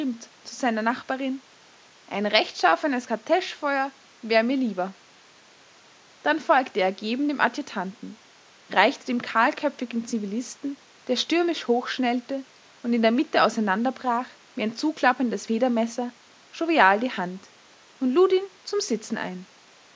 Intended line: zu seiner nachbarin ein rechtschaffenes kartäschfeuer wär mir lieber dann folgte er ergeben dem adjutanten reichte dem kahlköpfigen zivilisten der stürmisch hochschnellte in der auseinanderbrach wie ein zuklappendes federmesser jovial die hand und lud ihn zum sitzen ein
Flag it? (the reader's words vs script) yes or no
yes